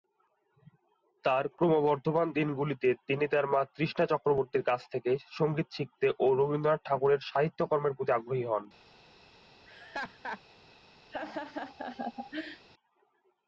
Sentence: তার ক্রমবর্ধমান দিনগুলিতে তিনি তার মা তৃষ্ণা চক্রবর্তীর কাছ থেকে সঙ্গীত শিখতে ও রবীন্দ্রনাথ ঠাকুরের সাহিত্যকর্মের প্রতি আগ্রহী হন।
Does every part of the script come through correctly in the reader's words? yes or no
yes